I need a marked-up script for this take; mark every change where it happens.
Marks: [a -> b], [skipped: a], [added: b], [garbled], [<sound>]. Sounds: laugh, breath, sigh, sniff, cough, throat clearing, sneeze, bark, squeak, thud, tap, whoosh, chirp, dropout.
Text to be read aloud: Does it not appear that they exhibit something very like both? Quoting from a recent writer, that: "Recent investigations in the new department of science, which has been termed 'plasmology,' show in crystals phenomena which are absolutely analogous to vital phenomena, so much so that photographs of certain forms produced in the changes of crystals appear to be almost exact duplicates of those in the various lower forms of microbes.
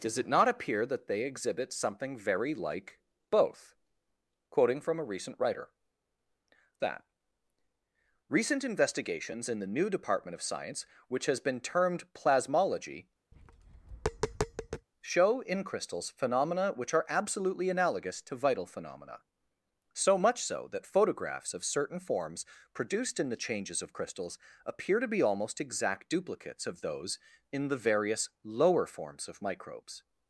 Does it not appear that they exhibit something very like both? Quoting from a recent writer, that: "Recent investigations in the new department of science, which has been termed 'plasmology,' [tap] show in crystals phenomena which are absolutely analogous to vital phenomena, so much so that photographs of certain forms produced in the changes of crystals appear to be almost exact duplicates of those in the various lower forms of microbes.